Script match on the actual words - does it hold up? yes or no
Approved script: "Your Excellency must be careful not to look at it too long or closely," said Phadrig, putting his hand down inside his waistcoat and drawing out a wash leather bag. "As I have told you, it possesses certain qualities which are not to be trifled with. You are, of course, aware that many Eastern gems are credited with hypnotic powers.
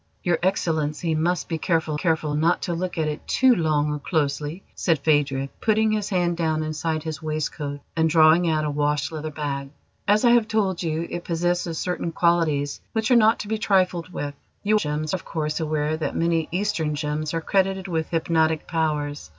no